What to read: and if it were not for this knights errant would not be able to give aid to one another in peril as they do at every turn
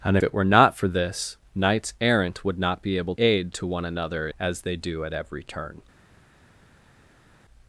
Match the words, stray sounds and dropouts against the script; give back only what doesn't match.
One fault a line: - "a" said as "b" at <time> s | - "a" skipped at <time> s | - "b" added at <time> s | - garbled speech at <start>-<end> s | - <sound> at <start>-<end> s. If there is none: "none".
- "if" skipped at 0.2 s
- "to give" skipped at 3.1 s
- "in peril" skipped at 4.3 s